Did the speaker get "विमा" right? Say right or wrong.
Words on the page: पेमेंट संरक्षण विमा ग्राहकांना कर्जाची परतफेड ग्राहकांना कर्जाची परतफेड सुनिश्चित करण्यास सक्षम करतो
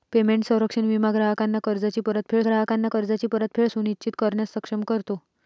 right